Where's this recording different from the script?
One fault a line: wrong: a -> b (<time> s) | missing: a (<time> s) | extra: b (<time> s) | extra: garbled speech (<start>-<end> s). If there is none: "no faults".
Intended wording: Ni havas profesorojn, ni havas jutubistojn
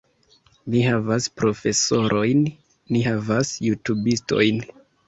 no faults